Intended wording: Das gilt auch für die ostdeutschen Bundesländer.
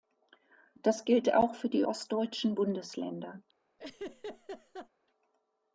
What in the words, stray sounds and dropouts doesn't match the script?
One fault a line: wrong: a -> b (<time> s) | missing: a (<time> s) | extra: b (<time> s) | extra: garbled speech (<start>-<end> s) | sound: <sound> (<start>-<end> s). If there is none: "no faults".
sound: laugh (3.8-4.9 s)